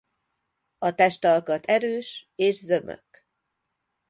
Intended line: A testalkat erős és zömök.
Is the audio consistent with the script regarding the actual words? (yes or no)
yes